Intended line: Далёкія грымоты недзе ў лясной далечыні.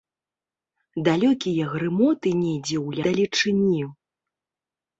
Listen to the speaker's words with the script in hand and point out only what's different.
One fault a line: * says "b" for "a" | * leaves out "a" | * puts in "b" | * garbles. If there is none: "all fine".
* leaves out "лясной"